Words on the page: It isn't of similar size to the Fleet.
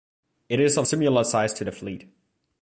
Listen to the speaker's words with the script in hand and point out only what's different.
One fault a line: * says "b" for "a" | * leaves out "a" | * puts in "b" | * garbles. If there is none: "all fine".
* says "is" for "isn't"